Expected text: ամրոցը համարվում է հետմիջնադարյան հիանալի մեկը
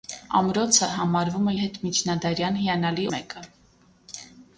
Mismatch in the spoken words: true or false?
false